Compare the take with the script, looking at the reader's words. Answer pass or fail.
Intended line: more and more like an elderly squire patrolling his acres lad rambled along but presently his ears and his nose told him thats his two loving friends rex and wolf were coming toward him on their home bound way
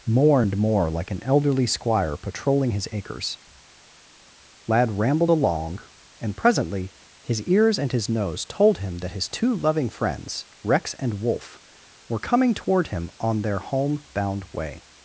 fail